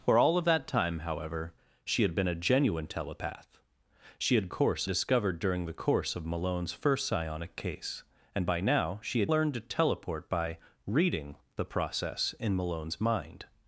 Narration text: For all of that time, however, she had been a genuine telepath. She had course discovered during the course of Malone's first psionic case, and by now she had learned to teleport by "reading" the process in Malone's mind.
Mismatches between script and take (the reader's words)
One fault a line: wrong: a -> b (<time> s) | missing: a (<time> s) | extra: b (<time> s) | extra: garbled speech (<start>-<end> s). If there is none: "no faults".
no faults